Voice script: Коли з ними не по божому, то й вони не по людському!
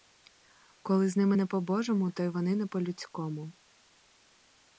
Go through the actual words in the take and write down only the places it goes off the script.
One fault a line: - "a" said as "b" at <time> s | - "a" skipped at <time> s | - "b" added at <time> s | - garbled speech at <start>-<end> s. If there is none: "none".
none